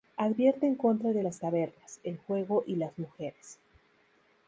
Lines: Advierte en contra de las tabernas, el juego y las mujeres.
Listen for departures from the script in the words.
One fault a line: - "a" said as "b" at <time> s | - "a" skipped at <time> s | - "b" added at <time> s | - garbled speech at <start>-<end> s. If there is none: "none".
none